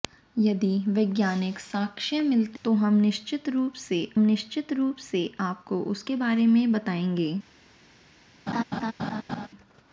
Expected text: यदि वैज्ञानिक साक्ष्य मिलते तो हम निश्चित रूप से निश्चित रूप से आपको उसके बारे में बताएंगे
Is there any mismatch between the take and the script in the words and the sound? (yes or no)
yes